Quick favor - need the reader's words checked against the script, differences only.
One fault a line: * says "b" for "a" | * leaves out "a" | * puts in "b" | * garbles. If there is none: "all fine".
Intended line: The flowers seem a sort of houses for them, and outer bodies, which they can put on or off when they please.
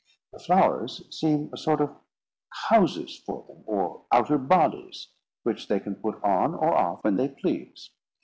* says "or" for "and"